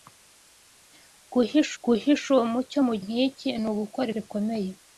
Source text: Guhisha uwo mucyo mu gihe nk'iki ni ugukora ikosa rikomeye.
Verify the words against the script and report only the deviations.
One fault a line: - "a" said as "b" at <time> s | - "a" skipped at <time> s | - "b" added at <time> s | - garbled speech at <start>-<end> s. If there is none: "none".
- "guhisha" added at 1.8 s
- "gihe" skipped at 2.9 s
- "ikosa" skipped at 4.1 s